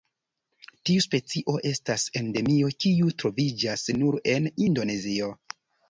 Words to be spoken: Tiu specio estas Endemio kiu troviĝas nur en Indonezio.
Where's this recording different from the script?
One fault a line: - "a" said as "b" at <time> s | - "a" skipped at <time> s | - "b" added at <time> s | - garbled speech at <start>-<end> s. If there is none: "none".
none